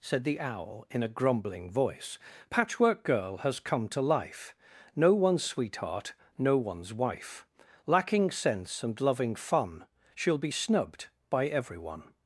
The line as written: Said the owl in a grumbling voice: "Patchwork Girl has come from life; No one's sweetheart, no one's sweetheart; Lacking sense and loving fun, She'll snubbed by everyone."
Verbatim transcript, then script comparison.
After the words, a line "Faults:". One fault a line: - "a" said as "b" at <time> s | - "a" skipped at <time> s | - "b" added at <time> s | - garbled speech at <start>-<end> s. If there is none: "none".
Said the owl in a grumbling voice: "Patchwork Girl has come to life; No one's sweetheart, no one's wife; Lacking sense and loving fun, She'll be snubbed by everyone."
Faults:
- "from" said as "to" at 3.9 s
- "sweetheart" said as "wife" at 6.9 s
- "be" added at 10.4 s